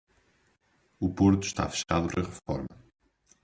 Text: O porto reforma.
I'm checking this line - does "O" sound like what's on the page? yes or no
yes